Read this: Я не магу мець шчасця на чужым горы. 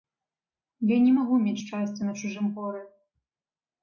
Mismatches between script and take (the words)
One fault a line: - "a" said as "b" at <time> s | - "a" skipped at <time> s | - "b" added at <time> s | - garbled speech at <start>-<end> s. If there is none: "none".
none